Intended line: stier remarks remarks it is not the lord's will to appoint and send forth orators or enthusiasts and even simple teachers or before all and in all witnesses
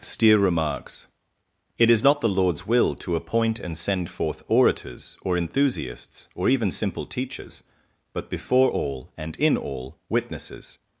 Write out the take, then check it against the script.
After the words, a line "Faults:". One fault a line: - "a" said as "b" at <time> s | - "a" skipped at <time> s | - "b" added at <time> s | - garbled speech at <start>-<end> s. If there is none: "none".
stier remarks it is not the lord's will to appoint and send forth orators or enthusiasts or even simple teachers but before all and in all witnesses
Faults:
- "remarks" skipped at 1.1 s
- "and" said as "or" at 6.3 s
- "or" said as "but" at 8.1 s